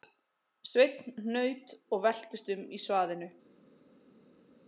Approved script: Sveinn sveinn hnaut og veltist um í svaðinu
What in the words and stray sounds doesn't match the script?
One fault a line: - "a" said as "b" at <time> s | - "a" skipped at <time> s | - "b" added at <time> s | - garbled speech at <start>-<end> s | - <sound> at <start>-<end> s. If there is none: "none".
- "sveinn" skipped at 1.1 s